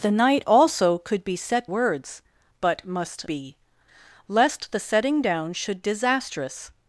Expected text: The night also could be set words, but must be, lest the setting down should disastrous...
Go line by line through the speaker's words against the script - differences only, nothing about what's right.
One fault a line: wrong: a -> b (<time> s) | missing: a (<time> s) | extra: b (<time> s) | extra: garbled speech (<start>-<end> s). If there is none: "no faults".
no faults